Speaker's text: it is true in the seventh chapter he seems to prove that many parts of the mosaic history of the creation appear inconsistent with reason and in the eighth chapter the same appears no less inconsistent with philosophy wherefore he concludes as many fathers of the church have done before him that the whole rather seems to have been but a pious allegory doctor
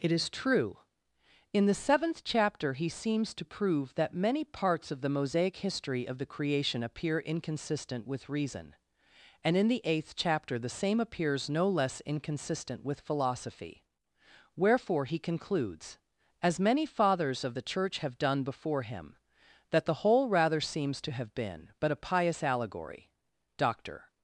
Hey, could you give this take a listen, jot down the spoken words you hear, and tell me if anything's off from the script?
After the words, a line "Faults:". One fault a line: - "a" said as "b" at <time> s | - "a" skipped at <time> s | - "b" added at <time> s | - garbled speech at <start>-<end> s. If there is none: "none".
it is true in the seventh chapter he seems to prove that many parts of the mosaic history of the creation appear inconsistent with reason and in the eighth chapter the same appears no less inconsistent with philosophy wherefore he concludes as many fathers of the church have done before him that the whole rather seems to have been but a pious allegory doctor
Faults:
none